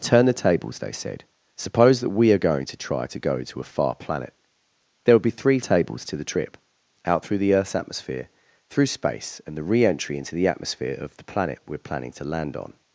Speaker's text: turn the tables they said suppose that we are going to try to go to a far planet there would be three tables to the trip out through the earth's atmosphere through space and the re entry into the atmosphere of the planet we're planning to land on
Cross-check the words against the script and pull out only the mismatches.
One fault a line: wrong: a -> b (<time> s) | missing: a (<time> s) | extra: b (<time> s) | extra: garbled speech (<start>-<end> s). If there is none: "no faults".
no faults